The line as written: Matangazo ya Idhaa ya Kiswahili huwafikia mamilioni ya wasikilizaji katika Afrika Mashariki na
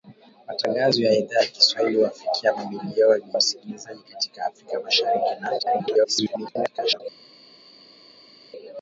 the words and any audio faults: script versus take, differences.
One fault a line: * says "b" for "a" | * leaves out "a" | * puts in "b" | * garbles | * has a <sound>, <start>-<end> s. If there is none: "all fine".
* leaves out "ya"
* garbles